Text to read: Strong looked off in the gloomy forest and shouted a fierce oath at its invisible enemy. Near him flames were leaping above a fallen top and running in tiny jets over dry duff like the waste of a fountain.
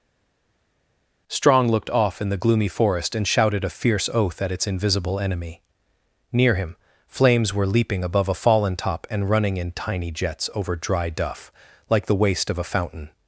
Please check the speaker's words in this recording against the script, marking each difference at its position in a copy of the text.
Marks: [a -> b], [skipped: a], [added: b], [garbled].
Strong looked off in the gloomy forest and shouted a fierce oath at its invisible enemy. Near him flames were leaping above a fallen top and running in tiny jets over dry duff like the waste of a fountain.